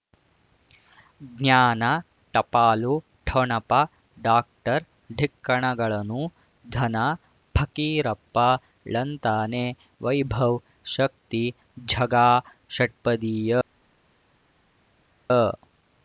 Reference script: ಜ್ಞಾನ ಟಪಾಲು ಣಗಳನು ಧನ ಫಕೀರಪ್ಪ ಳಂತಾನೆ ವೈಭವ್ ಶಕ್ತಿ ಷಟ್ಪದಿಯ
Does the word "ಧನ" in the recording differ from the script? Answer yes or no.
no